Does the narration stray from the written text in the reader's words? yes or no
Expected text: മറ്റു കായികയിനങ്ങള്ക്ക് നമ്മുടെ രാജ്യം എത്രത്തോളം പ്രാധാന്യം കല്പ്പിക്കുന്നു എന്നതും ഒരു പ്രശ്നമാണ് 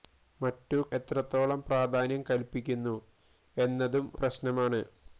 yes